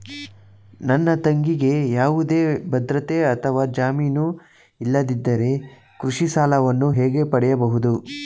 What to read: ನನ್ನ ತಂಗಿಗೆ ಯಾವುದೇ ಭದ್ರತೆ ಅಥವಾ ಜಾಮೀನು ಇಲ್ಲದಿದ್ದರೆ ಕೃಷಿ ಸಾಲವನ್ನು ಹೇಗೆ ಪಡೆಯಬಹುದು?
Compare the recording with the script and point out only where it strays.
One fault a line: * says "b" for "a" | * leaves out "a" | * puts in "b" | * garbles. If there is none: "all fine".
all fine